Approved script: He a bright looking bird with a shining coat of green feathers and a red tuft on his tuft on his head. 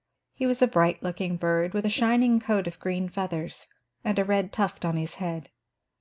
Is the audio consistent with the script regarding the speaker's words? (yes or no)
no